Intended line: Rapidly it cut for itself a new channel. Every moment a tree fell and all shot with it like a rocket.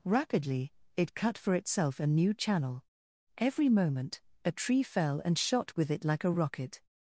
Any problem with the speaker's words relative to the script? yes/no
yes